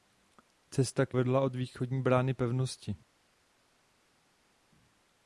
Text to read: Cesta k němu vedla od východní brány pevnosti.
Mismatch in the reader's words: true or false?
true